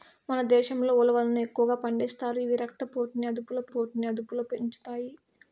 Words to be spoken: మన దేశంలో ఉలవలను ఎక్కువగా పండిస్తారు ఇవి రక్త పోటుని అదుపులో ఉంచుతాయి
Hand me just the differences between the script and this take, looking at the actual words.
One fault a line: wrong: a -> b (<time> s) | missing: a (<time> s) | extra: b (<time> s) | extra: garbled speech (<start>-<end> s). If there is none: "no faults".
extra: పోటుని అదుపులో (3.7 s)